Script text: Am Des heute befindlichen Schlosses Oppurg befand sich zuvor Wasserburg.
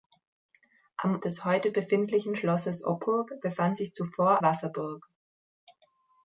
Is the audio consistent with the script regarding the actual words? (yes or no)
yes